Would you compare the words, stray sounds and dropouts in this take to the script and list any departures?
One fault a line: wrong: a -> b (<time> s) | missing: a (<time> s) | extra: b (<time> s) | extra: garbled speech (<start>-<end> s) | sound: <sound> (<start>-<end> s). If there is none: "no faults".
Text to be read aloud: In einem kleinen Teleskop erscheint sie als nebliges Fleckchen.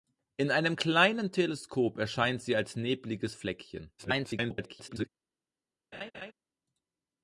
extra: garbled speech (4.0-5.1 s)
sound: laugh (5.9-6.3 s)